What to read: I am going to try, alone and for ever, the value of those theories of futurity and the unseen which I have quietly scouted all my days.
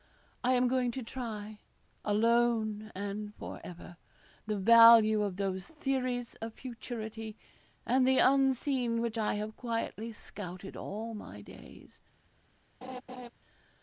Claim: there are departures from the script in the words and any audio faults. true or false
true